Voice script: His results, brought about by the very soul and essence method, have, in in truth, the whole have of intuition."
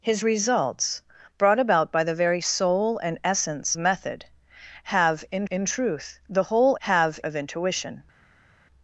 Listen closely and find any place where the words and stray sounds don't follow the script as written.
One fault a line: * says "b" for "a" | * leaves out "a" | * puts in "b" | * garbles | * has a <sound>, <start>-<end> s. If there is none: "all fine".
all fine